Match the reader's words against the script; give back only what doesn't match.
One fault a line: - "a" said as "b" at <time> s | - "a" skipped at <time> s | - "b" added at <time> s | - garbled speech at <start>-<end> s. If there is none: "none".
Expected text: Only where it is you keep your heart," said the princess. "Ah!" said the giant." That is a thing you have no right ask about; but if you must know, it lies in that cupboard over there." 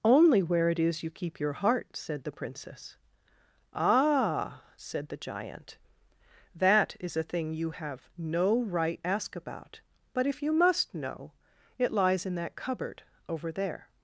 none